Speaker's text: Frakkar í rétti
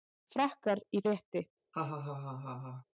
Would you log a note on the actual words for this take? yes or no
no